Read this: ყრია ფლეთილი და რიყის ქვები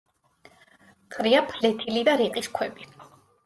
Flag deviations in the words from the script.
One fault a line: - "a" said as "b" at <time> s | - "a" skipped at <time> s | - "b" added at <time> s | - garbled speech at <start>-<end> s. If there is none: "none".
none